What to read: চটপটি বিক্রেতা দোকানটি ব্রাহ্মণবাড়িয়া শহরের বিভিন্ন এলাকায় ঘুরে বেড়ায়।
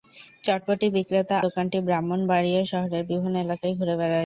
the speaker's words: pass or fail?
pass